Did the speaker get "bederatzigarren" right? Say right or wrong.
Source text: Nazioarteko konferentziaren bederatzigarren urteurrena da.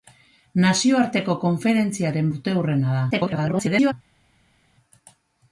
wrong